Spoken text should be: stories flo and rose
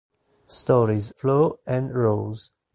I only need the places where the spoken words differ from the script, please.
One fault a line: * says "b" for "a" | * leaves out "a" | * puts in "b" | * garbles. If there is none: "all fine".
all fine